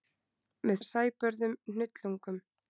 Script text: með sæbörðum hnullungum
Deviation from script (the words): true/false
false